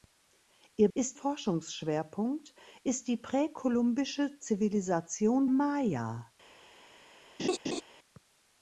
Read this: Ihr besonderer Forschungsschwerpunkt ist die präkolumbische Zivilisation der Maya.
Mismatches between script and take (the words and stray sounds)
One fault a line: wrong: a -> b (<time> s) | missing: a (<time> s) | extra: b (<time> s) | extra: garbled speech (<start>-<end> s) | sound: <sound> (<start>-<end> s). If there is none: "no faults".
wrong: besonderer -> ist (0.9 s)
missing: der (5.5 s)
sound: laugh (7.4-7.8 s)